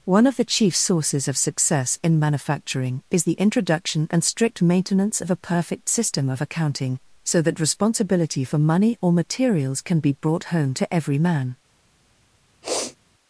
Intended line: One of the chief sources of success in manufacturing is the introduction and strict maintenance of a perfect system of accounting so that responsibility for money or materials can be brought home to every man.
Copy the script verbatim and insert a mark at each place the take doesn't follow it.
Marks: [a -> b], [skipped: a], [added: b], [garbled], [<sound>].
One of the chief sources of success in manufacturing is the introduction and strict maintenance of a perfect system of accounting so that responsibility for money or materials can be brought home to every man. [sniff]